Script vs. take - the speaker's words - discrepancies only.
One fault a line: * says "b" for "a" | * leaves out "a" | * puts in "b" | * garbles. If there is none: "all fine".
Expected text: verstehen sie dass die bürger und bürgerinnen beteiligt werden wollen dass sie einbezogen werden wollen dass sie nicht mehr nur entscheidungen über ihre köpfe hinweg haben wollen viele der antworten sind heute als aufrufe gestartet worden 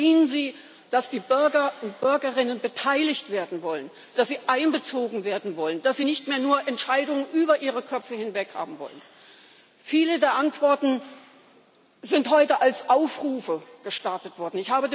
all fine